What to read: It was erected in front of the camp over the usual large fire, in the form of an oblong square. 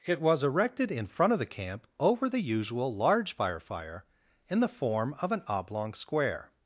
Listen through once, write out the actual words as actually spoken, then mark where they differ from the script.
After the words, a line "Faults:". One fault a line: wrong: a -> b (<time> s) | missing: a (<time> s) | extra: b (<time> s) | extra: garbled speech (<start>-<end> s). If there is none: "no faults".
It was erected in front of the camp over the usual large fire fire, in the form of an oblong square.
Faults:
extra: fire (3.6 s)